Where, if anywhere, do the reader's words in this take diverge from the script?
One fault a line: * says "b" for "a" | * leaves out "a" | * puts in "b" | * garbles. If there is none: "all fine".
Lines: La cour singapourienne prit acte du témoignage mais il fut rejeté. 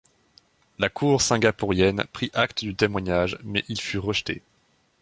all fine